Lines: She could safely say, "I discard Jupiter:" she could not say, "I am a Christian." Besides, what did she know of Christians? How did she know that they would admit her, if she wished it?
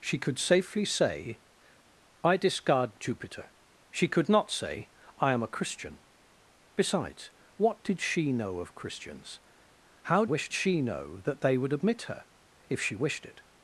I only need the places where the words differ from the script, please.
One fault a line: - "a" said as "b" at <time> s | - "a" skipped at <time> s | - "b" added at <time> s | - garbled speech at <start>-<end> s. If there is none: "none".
- "did" said as "wished" at 10.2 s